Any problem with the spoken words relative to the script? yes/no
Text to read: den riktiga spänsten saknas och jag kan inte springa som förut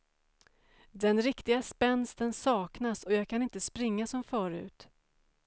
no